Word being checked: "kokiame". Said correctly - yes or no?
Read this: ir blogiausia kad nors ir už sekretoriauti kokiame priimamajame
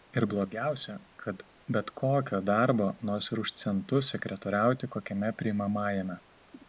yes